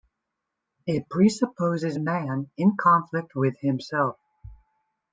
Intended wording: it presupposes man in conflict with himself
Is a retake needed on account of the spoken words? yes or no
no